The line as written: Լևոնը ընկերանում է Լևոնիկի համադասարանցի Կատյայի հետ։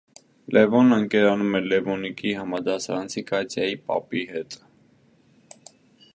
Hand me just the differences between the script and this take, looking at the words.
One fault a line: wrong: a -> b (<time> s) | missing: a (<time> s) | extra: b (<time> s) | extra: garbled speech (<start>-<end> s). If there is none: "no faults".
extra: պապի (3.9 s)